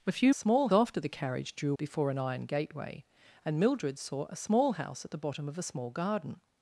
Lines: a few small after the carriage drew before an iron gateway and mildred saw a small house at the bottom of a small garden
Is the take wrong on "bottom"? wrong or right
right